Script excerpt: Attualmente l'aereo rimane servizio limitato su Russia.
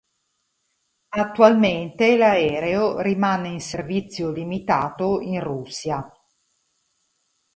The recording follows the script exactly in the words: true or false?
false